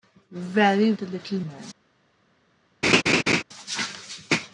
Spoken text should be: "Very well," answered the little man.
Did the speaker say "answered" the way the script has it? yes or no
no